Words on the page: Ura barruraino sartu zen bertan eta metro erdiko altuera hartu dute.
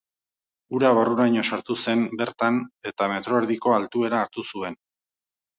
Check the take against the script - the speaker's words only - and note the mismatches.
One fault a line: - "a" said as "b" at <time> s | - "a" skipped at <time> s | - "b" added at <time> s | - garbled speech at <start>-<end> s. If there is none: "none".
- "dute" said as "zuen" at 4.5 s